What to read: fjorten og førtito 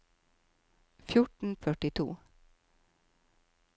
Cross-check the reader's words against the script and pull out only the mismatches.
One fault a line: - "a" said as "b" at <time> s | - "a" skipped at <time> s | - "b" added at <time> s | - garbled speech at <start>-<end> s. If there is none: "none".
none